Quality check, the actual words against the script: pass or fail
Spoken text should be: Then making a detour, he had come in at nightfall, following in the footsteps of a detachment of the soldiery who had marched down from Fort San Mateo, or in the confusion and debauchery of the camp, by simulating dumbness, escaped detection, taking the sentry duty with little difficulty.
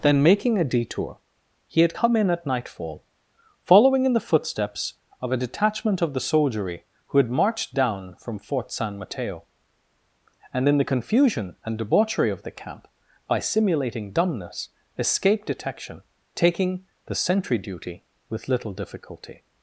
fail